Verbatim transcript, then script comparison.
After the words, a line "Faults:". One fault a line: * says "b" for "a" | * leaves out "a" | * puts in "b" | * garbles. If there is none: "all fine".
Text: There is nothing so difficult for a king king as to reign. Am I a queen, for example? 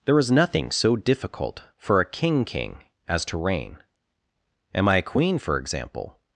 There is nothing so difficult for a king king as to reign. Am I a queen, for example?
Faults:
all fine